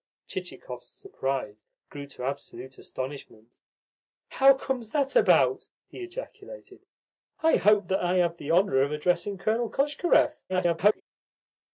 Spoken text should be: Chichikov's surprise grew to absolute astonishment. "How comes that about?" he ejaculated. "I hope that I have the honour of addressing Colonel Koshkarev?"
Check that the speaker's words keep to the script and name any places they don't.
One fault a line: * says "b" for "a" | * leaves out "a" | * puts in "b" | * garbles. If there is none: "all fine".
* garbles